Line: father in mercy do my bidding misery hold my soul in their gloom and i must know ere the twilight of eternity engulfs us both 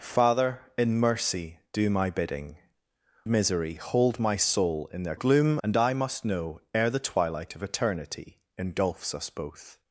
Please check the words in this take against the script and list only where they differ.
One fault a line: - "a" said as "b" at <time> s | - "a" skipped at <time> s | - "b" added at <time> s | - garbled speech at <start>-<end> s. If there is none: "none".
none